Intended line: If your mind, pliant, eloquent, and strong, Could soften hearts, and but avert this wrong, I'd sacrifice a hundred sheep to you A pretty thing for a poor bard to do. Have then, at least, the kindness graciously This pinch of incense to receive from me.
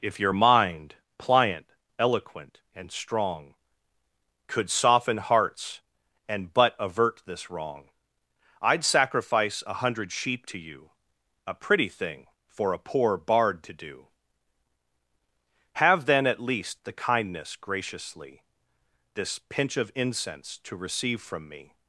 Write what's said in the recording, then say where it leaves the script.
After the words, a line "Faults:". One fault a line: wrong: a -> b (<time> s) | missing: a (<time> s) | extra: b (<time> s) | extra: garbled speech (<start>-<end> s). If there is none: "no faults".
If your mind, pliant, eloquent, and strong, Could soften hearts, and but avert this wrong, I'd sacrifice a hundred sheep to you A pretty thing for a poor bard to do. Have then, at least, the kindness graciously This pinch of incense to receive from me.
Faults:
no faults